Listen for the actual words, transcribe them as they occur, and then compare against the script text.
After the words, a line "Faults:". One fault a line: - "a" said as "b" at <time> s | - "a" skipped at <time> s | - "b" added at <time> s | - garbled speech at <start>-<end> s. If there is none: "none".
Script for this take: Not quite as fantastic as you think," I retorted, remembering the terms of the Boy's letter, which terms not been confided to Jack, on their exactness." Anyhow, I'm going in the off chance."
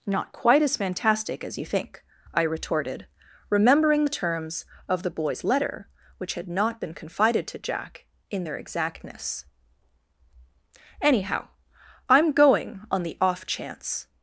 Not quite as fantastic as you think," I retorted, remembering the terms of the Boy's letter, which had not been confided to Jack, in their exactness." Anyhow, I'm going on the off chance."
Faults:
- "terms" said as "had" at 6.3 s
- "on" said as "in" at 8.3 s
- "in" said as "on" at 12.9 s